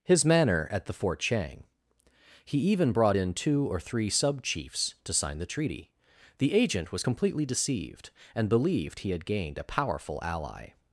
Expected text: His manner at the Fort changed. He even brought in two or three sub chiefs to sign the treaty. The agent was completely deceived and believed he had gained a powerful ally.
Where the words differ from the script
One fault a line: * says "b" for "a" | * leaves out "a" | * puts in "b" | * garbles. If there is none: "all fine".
* says "chang" for "changed"